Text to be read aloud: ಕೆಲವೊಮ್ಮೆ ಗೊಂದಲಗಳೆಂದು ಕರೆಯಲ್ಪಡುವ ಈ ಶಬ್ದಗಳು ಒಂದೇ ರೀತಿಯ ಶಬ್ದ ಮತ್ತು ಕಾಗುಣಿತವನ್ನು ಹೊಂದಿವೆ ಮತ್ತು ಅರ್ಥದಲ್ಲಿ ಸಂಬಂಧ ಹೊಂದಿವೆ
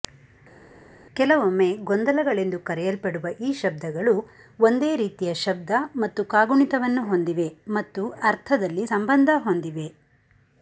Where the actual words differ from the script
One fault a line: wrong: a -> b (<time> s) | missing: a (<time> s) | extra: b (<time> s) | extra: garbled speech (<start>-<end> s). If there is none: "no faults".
no faults